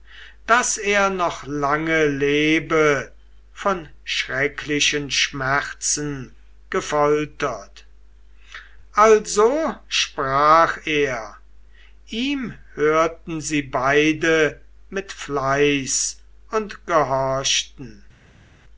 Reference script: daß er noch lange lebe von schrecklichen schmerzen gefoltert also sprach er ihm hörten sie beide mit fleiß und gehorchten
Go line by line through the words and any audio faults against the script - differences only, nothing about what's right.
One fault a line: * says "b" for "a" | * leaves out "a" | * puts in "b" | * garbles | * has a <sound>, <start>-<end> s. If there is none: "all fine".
all fine